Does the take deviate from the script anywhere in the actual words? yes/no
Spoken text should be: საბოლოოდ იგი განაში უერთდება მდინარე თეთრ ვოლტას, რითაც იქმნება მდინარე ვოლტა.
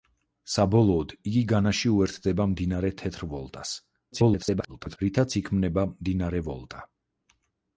yes